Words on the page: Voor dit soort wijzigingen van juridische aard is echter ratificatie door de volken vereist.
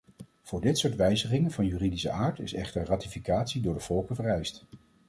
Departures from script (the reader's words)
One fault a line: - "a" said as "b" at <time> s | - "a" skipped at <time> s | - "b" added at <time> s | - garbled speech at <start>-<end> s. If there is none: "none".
none